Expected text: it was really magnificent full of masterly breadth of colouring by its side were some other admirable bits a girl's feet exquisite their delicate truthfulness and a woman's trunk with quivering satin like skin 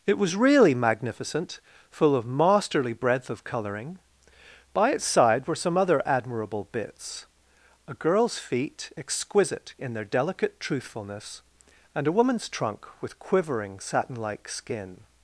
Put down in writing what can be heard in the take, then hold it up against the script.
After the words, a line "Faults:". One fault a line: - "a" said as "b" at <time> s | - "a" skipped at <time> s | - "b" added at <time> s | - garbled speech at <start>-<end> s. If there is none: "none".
it was really magnificent full of masterly breadth of colouring by its side were some other admirable bits a girl's feet exquisite in their delicate truthfulness and a woman's trunk with quivering satin like skin
Faults:
- "in" added at 9.8 s